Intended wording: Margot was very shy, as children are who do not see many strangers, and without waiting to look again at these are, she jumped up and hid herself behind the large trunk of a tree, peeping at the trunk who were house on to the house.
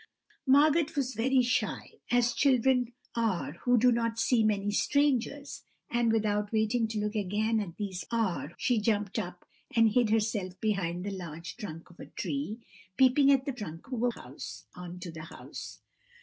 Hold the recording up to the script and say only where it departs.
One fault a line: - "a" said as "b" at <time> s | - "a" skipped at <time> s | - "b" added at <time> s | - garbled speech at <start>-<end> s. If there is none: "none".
none